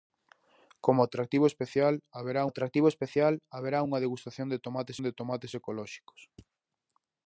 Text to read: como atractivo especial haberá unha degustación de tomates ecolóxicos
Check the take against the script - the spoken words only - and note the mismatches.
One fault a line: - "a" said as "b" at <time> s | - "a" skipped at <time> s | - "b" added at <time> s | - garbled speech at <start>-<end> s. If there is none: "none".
- "atractivo especial haberá" added at 2.5 s
- "de tomates" added at 5.0 s